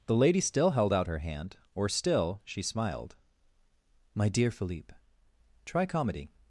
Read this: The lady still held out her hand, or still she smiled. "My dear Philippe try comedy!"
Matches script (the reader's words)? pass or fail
pass